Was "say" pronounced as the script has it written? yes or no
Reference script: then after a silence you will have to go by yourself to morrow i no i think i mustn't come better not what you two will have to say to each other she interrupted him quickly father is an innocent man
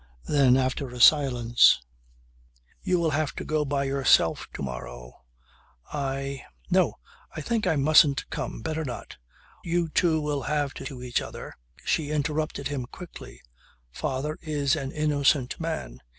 no